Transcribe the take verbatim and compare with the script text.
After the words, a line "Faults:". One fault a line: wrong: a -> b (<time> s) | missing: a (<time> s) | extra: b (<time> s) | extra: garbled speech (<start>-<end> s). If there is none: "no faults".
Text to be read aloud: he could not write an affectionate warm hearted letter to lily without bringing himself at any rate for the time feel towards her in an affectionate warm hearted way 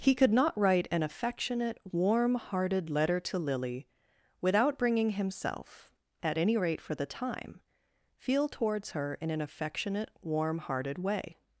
he could not write an affectionate warm hearted letter to lily without bringing himself at any rate for the time feel towards her in an affectionate warm hearted way
Faults:
no faults